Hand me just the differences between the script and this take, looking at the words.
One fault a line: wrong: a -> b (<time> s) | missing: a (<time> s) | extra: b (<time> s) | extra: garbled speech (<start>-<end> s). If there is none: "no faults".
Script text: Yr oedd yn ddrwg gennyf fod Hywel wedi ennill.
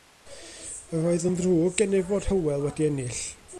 no faults